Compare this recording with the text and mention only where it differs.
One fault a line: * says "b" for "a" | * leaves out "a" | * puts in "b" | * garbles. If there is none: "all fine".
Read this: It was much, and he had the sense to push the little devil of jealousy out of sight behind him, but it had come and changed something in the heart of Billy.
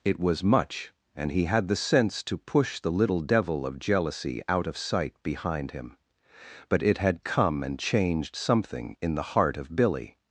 all fine